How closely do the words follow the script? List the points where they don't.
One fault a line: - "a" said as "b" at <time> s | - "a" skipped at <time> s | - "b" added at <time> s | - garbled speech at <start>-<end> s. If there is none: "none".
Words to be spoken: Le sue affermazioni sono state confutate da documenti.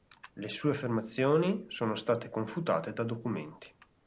none